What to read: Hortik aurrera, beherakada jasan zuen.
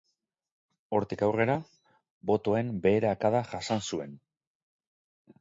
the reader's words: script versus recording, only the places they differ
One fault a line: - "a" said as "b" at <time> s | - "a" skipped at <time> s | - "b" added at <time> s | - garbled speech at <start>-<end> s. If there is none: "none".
- "botoen" added at 2.3 s